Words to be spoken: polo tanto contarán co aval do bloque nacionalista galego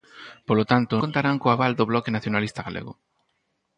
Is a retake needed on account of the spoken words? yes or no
no